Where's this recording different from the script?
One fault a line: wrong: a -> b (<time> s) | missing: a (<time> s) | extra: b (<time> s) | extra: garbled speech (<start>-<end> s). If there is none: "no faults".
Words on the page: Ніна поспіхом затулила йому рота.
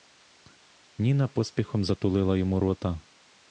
no faults